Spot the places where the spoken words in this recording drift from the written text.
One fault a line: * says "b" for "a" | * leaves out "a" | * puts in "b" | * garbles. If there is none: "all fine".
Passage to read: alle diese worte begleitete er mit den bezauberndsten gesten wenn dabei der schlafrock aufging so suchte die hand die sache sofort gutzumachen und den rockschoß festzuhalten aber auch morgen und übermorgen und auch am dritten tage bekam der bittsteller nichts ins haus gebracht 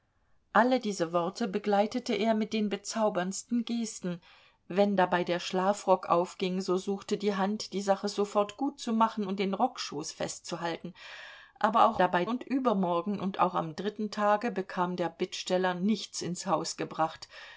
* says "dabei" for "morgen"